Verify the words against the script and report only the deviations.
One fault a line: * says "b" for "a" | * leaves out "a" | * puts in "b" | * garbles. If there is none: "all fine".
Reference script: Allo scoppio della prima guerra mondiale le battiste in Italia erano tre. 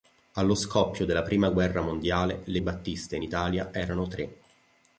all fine